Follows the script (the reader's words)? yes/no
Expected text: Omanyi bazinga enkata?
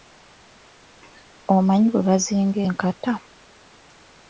no